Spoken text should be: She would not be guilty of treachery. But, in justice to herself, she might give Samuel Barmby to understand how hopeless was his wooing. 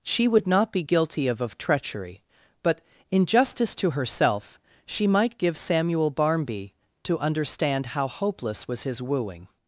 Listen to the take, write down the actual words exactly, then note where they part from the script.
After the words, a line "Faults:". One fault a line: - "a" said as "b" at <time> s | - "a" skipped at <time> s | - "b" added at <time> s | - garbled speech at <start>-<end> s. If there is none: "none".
She would not be guilty of of treachery. But, in justice to herself, she might give Samuel Barmby to understand how hopeless was his wooing.
Faults:
- "of" added at 1.4 s